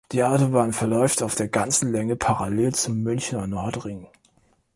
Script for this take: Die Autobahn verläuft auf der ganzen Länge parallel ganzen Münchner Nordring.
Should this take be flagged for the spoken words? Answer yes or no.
yes